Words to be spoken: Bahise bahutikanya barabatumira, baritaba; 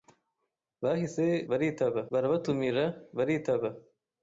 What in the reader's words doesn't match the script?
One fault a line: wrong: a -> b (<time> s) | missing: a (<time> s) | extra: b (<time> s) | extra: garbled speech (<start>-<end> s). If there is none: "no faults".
wrong: bahutikanya -> baritaba (1.5 s)